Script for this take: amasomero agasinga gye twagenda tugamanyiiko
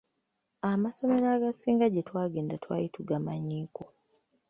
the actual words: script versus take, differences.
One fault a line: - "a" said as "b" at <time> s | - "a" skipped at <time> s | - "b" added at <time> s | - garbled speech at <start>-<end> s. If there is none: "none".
- "twali" added at 2.6 s